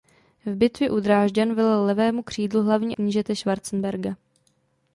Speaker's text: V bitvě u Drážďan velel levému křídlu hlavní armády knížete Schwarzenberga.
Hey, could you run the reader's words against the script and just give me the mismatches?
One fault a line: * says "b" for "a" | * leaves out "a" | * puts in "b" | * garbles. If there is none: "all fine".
* leaves out "armády"